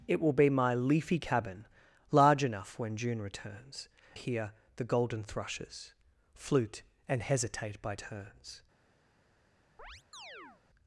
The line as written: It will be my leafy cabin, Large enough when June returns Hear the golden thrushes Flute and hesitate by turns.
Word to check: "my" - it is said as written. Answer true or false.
true